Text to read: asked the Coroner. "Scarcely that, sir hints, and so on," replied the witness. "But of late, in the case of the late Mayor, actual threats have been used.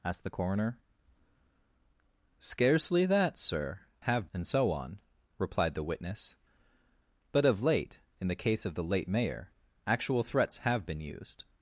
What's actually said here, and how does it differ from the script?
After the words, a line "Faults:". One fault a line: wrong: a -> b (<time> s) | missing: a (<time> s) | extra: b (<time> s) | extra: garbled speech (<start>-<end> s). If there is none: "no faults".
asked the Coroner. "Scarcely that, sir have, and so on," replied the witness. "But of late, in the case of the late Mayor, actual threats have been used.
Faults:
wrong: hints -> have (4.0 s)